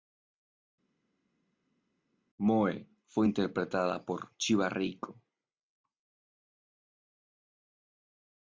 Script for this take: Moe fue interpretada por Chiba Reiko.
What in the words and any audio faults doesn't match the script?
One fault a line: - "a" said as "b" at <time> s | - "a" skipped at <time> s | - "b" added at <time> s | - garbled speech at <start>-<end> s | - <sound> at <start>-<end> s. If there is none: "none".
none